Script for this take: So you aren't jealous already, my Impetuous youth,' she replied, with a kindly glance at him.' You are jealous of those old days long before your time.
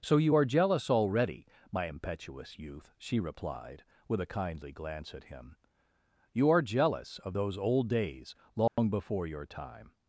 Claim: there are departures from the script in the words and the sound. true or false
true